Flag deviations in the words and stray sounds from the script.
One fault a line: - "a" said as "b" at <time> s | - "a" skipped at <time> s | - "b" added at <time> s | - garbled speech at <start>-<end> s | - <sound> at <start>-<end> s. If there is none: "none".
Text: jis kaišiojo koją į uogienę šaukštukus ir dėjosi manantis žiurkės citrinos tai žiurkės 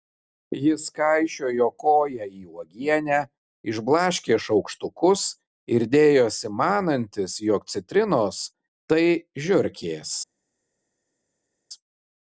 - "išblaškė" added at 3.7 s
- "žiurkės" said as "jog" at 7.5 s